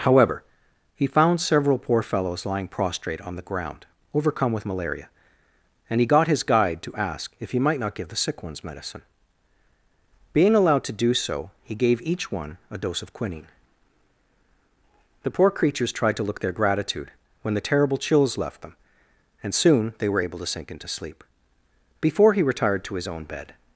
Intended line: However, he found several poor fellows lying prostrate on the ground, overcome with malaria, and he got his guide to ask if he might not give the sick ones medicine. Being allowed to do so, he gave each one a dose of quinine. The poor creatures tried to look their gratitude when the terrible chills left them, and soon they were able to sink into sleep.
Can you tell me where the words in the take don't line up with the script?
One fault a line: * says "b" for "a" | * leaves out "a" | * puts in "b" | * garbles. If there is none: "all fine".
* puts in "Before he retired to his own bed"